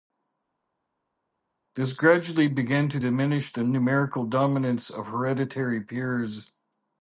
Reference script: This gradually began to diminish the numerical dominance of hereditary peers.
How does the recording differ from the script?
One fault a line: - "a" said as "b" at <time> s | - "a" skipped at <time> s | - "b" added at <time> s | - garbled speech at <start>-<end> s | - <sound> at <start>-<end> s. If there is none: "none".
none